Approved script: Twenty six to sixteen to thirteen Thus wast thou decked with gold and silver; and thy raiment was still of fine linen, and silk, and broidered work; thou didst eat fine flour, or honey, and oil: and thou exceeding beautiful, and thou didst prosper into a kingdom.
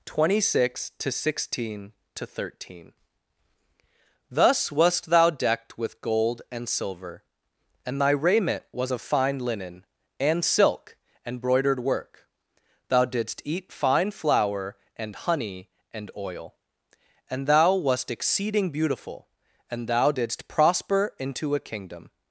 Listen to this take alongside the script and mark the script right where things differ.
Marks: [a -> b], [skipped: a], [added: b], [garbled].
Twenty six to sixteen to thirteen Thus wast thou decked with gold and silver; and thy raiment was [skipped: still] of fine linen, and silk, and broidered work; thou didst eat fine flour, [or -> and] honey, and oil: and thou [added: wast] exceeding beautiful, and thou didst prosper into a kingdom.